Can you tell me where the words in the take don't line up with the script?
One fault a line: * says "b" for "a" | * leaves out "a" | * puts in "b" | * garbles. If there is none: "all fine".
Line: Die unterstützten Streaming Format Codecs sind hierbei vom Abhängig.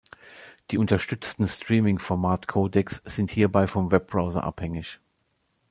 * puts in "Webbrowser"